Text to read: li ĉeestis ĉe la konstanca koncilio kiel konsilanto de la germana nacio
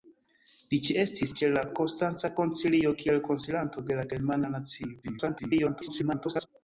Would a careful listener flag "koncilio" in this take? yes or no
no